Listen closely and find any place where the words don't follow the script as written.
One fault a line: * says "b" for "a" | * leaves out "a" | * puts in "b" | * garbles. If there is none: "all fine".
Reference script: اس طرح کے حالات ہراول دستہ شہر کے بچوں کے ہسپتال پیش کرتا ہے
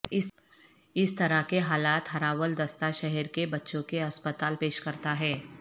all fine